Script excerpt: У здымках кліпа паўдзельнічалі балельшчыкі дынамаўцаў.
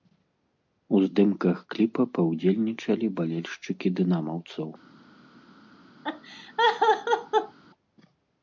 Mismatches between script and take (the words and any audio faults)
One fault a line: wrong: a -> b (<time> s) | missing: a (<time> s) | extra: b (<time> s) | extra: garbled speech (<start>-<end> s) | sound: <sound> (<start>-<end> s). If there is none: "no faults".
sound: laugh (6.0-7.6 s)